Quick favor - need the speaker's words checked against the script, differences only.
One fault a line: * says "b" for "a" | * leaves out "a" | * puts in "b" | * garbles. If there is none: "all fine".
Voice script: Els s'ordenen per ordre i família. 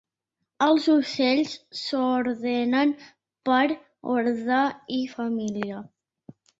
* puts in "ocells"